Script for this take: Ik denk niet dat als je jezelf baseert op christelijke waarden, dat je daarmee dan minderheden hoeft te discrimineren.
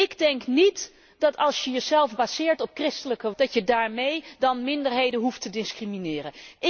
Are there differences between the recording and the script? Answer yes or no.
yes